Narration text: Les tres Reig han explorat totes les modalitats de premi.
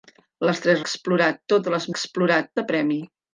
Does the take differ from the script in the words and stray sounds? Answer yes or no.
yes